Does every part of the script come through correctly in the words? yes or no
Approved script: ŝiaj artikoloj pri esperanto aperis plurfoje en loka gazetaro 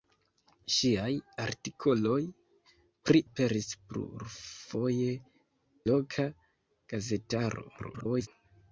no